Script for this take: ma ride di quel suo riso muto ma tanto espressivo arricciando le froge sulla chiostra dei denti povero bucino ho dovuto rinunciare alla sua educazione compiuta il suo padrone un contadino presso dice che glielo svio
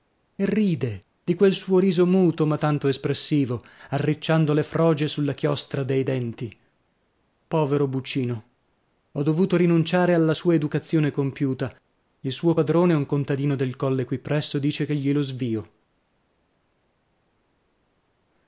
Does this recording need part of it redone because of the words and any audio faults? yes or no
yes